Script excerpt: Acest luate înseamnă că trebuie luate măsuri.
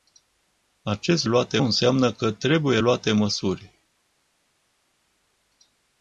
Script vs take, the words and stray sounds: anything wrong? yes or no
no